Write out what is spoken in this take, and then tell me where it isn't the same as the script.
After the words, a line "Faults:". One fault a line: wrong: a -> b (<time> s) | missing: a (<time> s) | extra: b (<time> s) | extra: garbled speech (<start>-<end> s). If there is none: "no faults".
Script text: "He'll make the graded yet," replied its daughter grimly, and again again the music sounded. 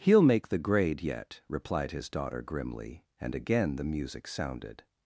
"He'll make the grade yet," replied his daughter grimly, and again the music sounded.
Faults:
wrong: graded -> grade (0.6 s)
wrong: its -> his (1.9 s)
missing: again (3.8 s)